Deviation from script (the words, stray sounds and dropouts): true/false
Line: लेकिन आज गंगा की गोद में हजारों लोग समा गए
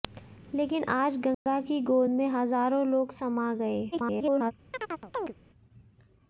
true